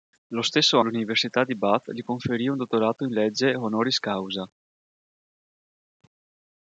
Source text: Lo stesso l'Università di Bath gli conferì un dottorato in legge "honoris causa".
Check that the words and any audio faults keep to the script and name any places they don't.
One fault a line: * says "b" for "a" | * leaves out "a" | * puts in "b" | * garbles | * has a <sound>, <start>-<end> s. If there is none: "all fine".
all fine